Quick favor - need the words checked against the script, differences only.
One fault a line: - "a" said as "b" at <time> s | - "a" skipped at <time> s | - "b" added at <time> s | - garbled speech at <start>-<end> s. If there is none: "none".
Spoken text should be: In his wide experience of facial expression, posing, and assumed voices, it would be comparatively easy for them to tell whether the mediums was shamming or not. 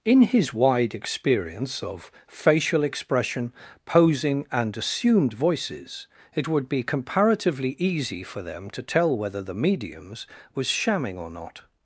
none